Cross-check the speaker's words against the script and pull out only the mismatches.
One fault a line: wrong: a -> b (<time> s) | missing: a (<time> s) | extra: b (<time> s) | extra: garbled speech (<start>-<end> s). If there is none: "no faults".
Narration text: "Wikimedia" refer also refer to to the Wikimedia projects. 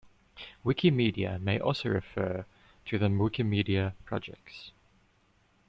wrong: refer -> may (1.4 s)
missing: to (3.0 s)